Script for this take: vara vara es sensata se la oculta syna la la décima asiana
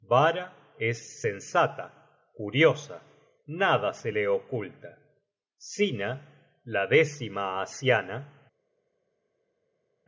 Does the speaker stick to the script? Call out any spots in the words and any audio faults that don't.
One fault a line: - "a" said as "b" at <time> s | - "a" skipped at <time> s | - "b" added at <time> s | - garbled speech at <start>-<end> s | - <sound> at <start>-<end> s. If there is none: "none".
- "vara" skipped at 0.8 s
- "curiosa nada" added at 2.3 s
- "la" skipped at 6.9 s